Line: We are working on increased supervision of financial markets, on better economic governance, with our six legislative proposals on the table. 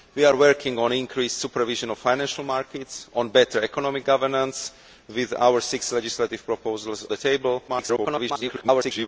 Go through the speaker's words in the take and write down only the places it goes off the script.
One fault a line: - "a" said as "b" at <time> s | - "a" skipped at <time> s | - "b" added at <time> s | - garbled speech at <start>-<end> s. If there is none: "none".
- "on" skipped at 7.1 s
- garbled speech at 7.7-9.1 s